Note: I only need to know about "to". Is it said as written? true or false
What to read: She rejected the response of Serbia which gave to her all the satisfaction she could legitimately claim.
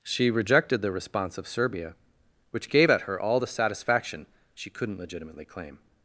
false